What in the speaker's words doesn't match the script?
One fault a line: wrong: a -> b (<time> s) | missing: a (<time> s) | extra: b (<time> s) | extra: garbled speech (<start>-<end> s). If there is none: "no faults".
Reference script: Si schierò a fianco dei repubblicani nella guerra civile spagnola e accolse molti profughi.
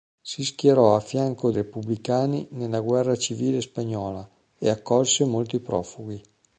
missing: dei (1.5 s)